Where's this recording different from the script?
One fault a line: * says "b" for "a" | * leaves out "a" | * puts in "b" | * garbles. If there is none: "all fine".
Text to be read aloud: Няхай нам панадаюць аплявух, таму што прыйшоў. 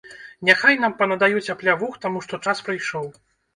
* puts in "час"